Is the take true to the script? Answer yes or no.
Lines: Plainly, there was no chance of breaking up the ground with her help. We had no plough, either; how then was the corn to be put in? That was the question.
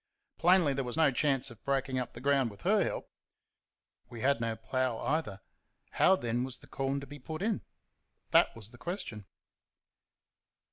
yes